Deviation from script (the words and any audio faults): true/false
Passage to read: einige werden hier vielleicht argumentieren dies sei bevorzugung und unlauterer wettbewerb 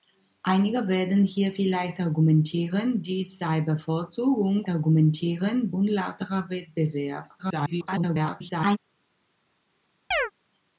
true